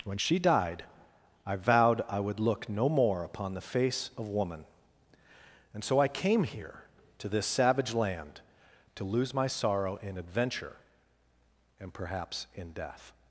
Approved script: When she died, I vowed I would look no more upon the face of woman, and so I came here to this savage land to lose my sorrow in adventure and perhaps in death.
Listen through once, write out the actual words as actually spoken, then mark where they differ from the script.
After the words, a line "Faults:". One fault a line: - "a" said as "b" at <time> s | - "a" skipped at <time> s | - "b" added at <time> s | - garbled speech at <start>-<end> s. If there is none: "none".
When she died, I vowed I would look no more upon the face of woman, and so I came here to this savage land to lose my sorrow in adventure and perhaps in death.
Faults:
none